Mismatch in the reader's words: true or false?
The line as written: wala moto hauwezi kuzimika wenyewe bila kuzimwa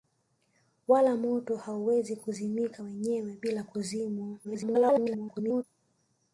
true